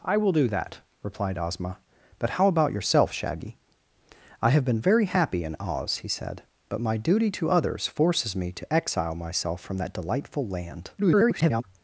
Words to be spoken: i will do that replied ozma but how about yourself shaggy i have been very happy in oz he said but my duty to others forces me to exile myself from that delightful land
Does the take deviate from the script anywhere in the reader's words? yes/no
yes